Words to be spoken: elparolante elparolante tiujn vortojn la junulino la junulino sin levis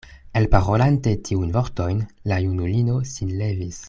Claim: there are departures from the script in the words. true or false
true